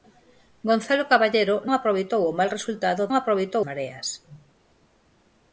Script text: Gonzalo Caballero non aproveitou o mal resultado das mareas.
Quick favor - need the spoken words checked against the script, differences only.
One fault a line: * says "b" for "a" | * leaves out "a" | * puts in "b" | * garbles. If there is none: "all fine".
* leaves out "non"
* says "aproveitou" for "das"